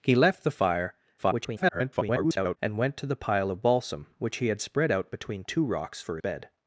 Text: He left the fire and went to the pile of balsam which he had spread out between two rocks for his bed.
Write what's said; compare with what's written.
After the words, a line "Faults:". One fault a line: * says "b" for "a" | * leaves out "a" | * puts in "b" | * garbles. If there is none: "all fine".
He left the fire [garbled] and went to the pile of balsam which he had spread out between two rocks for bed.
Faults:
* garbles
* leaves out "his"